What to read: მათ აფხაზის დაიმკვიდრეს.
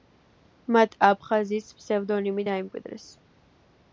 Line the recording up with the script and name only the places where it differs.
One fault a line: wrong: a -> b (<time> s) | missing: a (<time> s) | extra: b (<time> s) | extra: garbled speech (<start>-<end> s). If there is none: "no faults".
extra: ფსევდონიმი (1.8 s)